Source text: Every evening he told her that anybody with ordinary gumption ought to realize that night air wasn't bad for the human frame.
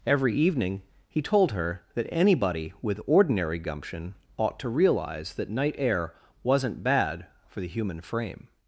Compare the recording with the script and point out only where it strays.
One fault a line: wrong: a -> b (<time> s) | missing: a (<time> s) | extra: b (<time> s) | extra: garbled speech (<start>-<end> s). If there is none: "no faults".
no faults